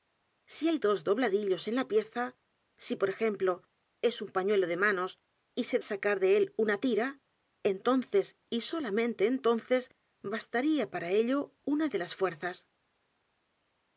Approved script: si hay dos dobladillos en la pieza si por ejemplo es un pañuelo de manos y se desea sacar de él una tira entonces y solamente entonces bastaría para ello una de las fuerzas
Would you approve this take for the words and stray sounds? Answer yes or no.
no